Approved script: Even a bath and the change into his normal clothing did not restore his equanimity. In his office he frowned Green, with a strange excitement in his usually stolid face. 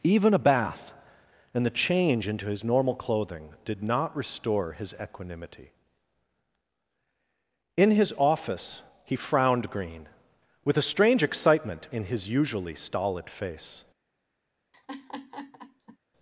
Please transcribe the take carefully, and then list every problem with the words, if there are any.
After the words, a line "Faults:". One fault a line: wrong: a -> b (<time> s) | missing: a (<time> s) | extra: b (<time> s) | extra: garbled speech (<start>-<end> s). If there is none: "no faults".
Even a bath and the change into his normal clothing did not restore his equanimity. In his office he frowned Green, with a strange excitement in his usually stolid face.
Faults:
no faults